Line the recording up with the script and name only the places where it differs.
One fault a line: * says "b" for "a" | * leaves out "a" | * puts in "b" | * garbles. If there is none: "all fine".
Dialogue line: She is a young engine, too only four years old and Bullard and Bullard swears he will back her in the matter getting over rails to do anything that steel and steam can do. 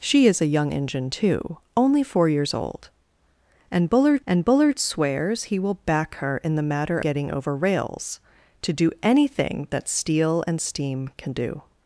all fine